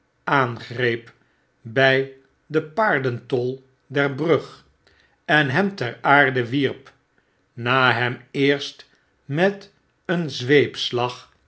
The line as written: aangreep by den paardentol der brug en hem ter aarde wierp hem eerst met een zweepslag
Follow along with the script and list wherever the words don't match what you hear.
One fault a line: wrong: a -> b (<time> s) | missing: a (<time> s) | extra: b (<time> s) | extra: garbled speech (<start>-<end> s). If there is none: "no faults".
extra: na (7.5 s)